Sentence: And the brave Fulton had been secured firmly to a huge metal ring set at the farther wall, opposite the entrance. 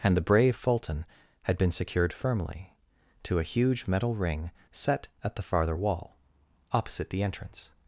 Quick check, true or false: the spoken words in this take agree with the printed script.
true